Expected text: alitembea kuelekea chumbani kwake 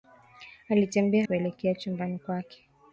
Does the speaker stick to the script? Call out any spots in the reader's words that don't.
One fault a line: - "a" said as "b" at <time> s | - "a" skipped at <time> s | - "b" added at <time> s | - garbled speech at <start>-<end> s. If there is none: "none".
none